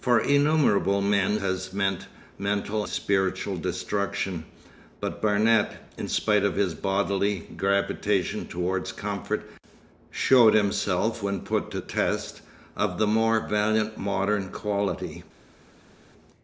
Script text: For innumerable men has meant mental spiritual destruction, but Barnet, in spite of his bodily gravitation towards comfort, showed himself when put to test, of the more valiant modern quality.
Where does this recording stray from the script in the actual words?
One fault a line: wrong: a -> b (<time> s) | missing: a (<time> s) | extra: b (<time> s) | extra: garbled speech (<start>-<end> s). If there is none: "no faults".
no faults